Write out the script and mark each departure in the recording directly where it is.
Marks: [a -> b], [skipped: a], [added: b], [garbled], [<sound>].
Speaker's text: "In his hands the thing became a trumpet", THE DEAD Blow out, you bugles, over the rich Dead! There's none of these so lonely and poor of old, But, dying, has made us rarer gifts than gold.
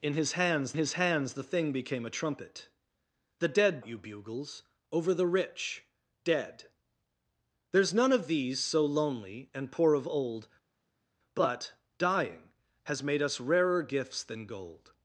"In his hands [added: his hands] the thing became a trumpet", THE DEAD [skipped: Blow out,] you bugles, over the rich Dead! There's none of these so lonely and poor of old, But, dying, has made us rarer gifts than gold.